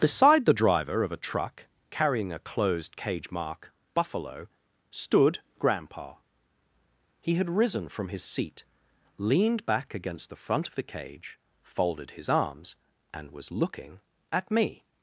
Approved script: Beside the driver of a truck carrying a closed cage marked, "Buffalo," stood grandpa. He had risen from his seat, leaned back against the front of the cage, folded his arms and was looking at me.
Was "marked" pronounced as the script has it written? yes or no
no